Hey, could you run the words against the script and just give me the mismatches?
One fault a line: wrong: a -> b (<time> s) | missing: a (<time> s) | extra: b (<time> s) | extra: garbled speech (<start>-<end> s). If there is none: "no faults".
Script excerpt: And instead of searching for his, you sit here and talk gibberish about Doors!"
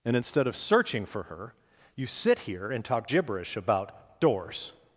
wrong: his -> her (1.2 s)